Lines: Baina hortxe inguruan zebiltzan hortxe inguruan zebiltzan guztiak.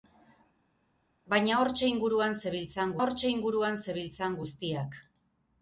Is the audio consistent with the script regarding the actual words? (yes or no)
yes